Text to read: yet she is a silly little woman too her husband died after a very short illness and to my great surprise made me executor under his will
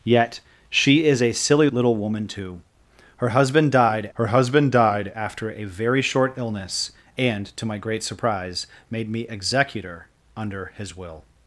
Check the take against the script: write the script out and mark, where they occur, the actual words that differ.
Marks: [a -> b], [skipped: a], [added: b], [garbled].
yet she is a silly little woman too her husband died [added: her husband died] after a very short illness and to my great surprise made me executor under his will